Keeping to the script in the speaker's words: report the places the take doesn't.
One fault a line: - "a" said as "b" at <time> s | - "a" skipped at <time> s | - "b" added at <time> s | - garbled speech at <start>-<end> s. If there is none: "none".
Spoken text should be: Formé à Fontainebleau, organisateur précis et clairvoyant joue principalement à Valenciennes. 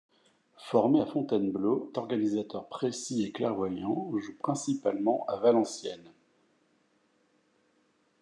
none